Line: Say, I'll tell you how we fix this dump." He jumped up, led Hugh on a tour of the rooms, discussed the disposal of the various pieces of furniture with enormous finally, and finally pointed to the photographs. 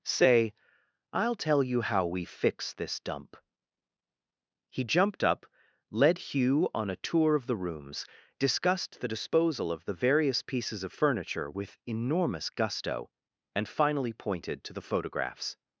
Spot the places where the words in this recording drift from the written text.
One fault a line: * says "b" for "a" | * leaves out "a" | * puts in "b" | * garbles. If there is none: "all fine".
* says "gusto" for "finally"